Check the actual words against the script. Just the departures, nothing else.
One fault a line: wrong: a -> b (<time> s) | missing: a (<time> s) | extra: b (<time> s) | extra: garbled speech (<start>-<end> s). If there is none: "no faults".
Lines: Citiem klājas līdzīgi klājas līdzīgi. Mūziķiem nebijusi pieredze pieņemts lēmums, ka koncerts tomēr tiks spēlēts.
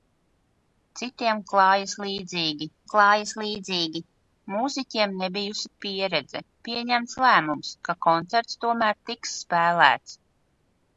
no faults